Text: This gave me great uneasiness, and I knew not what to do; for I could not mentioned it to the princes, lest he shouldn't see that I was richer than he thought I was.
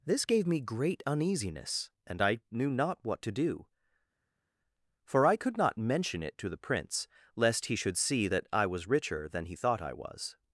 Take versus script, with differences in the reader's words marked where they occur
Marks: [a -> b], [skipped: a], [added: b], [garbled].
This gave me great uneasiness, and I knew not what to do; for I could not [mentioned -> mention] it to the [princes, -> prince] lest he [shouldn't -> should] see that I was richer than he thought I was.